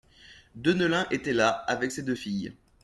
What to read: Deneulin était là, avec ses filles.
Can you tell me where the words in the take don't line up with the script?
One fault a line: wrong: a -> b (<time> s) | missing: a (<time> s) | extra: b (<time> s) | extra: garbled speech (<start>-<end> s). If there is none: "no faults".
extra: deux (2.0 s)